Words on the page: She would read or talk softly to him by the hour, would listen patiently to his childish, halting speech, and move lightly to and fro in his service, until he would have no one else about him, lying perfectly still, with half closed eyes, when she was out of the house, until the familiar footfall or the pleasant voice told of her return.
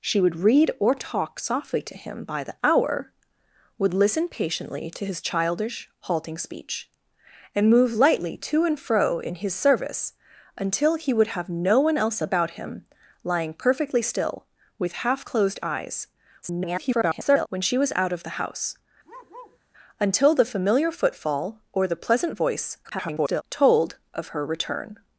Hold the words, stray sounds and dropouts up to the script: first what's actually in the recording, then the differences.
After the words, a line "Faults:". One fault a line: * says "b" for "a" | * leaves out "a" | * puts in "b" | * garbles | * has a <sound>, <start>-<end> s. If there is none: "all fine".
She would read or talk softly to him by the hour, would listen patiently to his childish, halting speech, and move lightly to and fro in his service, until he would have no one else about him, lying perfectly still, with half closed eyes, [garbled] when she was out of the house, until the familiar footfall or the pleasant voice [garbled] told of her return.
Faults:
* garbles
* has a bark, 19.0-19.6 s
* garbles